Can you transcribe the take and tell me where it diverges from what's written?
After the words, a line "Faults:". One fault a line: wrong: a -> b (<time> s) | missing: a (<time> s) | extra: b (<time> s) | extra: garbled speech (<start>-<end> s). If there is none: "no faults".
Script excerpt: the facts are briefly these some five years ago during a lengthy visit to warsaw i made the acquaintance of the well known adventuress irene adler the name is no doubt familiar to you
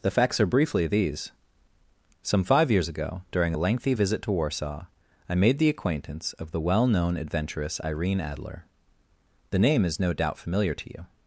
the facts are briefly these some five years ago during a lengthy visit to warsaw i made the acquaintance of the well known adventuress irene adler the name is no doubt familiar to you
Faults:
no faults